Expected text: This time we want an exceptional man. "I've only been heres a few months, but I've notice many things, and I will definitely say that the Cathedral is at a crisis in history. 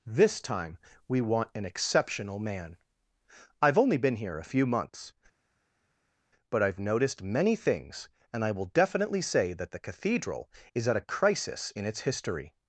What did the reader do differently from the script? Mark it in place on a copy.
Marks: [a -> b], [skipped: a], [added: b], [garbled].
This time we want an exceptional man. "I've only been [heres -> here] a few months, but I've [notice -> noticed] many things, and I will definitely say that the Cathedral is at a crisis in [added: its] history.